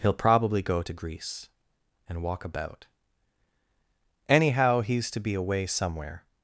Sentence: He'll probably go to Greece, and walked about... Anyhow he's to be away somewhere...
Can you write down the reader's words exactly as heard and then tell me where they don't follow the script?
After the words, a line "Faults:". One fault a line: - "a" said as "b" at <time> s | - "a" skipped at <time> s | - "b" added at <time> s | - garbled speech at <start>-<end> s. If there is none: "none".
He'll probably go to Greece, and walk about... Anyhow he's to be away somewhere...
Faults:
- "walked" said as "walk" at 2.2 s